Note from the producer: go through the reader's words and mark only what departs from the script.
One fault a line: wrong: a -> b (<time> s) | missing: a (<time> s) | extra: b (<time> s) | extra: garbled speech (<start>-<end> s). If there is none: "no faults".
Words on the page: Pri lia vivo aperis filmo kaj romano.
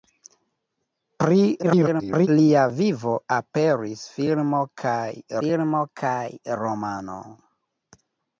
extra: garbled speech (1.6-2.3 s)
extra: filmo kaj (5.4 s)